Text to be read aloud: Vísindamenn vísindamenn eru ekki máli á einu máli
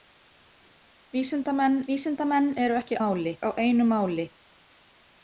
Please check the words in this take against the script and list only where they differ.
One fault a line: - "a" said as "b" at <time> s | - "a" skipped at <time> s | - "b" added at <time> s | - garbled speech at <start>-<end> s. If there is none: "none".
none